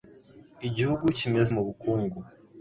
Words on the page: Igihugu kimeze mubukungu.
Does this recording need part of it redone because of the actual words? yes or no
no